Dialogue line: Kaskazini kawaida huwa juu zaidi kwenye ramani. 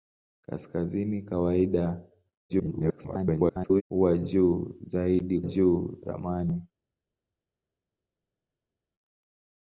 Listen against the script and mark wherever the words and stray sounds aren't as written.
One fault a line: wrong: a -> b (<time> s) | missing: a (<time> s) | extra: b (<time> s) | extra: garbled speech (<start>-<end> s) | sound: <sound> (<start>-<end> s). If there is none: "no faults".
extra: garbled speech (2.5-3.8 s)
wrong: kwenye -> juu (5.4 s)